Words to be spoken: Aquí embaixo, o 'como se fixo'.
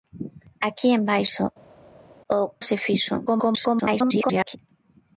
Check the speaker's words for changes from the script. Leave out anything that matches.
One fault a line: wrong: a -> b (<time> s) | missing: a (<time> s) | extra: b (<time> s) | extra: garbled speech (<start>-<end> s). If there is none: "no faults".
missing: como (2.4 s)
extra: garbled speech (3.3-4.6 s)